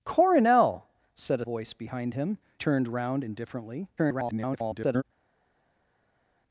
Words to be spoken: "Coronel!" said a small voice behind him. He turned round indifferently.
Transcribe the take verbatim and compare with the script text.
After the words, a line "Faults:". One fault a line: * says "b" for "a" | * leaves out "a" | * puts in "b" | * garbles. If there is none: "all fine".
"Coronel!" said a voice behind him. Turned round indifferently. [garbled]
Faults:
* leaves out "small"
* leaves out "He"
* garbles